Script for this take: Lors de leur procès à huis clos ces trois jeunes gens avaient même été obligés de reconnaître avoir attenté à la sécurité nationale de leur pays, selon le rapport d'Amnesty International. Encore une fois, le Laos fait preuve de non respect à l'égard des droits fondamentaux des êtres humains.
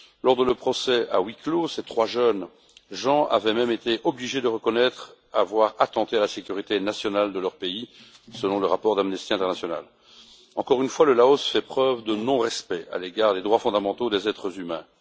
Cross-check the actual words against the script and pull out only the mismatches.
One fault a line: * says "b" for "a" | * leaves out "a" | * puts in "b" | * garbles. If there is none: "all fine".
all fine